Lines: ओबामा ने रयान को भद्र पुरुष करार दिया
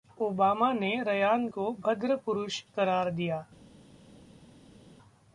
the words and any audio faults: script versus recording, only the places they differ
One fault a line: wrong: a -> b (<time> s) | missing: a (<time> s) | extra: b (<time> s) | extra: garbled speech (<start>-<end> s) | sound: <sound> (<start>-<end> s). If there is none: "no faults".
no faults